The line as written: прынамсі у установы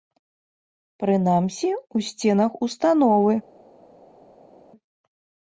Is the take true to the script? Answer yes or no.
no